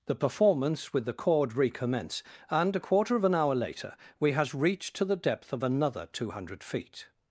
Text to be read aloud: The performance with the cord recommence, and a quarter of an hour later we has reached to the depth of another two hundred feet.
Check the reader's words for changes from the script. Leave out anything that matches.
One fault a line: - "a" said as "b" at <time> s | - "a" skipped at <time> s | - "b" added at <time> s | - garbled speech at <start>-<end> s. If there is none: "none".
none